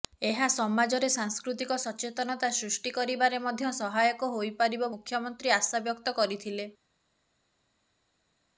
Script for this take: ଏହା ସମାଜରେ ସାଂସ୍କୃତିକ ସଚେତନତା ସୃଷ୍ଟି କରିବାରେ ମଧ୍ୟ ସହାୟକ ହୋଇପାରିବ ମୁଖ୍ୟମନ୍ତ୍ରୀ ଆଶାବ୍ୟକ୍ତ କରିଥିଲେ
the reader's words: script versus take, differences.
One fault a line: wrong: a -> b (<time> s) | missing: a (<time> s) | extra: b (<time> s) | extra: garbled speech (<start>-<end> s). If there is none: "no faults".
no faults